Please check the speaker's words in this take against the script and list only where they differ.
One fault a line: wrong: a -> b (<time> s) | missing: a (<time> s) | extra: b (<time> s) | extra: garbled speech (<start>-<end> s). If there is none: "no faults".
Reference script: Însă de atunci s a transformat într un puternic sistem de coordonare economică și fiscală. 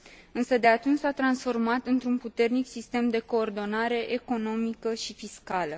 no faults